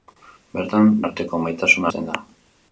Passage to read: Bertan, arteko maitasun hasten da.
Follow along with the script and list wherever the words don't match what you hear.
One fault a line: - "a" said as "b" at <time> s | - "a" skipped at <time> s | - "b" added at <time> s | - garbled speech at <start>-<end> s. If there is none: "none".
none